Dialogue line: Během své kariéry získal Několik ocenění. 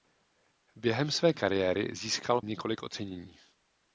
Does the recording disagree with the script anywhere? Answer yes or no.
no